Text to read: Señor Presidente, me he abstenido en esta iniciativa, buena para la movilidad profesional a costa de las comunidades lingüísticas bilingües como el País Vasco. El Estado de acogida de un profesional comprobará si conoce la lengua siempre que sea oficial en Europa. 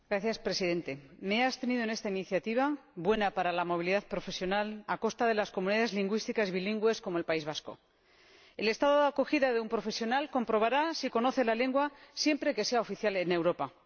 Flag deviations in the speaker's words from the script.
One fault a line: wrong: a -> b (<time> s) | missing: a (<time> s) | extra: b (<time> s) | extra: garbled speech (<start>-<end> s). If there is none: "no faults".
no faults